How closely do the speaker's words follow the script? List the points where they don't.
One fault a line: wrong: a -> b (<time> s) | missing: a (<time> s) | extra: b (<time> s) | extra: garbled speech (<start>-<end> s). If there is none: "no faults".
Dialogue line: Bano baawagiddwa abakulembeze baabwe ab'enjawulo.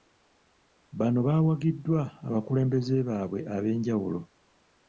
no faults